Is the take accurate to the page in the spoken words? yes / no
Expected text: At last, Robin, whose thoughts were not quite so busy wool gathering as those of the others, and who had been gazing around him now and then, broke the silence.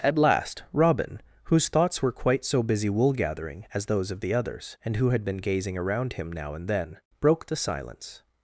no